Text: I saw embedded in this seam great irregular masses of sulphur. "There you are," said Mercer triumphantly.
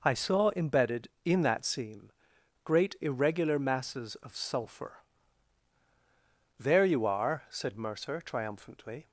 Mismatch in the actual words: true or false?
true